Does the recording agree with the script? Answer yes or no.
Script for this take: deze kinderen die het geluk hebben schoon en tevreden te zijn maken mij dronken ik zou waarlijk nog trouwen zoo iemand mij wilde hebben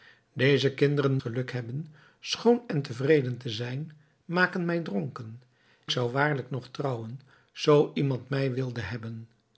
no